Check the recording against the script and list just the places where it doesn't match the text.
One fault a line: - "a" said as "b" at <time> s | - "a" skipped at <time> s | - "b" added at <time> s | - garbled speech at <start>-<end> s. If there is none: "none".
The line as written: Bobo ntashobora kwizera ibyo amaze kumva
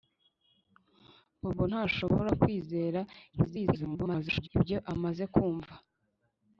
- garbled speech at 3.3-4.5 s